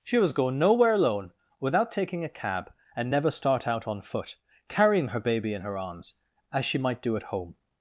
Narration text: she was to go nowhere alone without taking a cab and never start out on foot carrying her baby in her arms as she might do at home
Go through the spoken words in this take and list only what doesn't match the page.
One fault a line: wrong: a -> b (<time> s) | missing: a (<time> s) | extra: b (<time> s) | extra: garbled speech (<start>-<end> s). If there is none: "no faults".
missing: to (0.3 s)